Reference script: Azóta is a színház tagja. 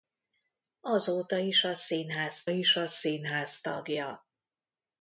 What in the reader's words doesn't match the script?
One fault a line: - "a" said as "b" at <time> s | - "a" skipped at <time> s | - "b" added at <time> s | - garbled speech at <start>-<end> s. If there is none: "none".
- "is a színház" added at 2.5 s